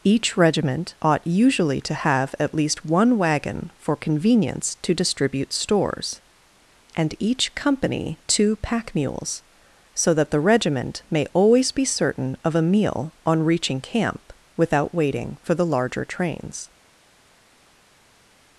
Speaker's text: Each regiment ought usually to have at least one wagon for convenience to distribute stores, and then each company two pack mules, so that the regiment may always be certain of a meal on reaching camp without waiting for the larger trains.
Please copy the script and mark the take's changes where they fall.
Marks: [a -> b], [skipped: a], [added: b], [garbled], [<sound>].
Each regiment ought usually to have at least one wagon for convenience to distribute stores, and [skipped: then] each company two pack mules, so that the regiment may always be certain of a meal on reaching camp without waiting for the larger trains.